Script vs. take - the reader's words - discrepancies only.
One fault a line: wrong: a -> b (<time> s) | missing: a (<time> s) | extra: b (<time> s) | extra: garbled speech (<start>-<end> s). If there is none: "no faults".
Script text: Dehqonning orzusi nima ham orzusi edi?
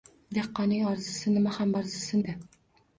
no faults